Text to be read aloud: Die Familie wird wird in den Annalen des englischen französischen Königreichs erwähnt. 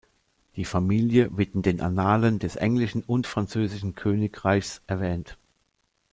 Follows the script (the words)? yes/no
no